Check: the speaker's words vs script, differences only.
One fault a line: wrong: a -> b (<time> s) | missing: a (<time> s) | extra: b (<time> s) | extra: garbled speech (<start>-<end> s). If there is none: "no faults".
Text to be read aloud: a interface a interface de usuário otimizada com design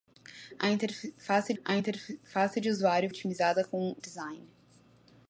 no faults